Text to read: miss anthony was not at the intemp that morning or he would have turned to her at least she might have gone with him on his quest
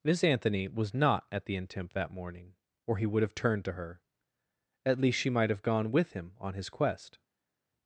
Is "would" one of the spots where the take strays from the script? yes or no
no